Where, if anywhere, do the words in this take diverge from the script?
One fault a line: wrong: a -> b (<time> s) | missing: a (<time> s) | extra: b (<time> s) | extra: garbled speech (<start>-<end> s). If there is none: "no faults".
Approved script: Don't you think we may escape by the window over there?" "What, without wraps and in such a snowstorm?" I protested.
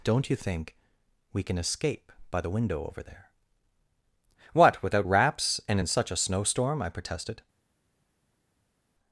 wrong: may -> can (1.4 s)